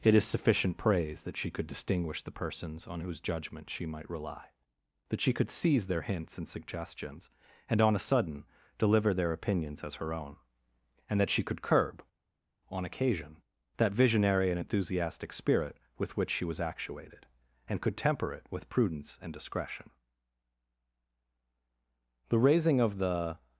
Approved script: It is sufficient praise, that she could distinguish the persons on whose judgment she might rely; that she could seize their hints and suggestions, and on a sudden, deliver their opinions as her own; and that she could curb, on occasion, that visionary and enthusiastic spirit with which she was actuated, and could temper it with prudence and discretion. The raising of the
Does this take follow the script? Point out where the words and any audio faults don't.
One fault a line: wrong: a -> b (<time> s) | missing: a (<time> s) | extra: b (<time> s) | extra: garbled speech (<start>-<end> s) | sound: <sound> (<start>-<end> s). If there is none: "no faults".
no faults